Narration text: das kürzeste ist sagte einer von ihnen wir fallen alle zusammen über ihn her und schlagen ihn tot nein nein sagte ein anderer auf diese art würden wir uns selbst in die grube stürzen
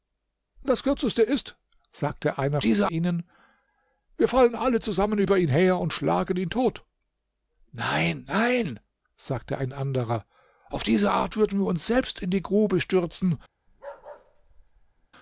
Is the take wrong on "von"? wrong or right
wrong